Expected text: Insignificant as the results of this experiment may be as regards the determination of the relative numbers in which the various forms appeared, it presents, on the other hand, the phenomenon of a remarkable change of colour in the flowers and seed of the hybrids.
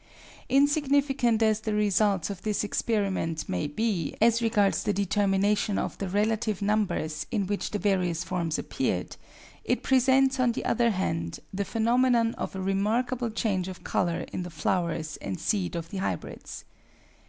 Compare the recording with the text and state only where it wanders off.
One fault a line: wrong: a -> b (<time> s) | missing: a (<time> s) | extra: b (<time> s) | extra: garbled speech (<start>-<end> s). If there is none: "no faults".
no faults